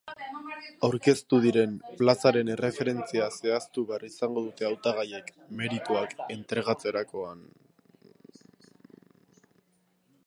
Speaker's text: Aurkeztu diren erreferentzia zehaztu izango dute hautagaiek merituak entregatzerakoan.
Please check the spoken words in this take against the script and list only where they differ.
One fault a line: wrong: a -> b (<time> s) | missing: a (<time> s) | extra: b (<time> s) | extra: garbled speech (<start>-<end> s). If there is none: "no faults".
extra: plazaren (2.0 s)
extra: behar (3.9 s)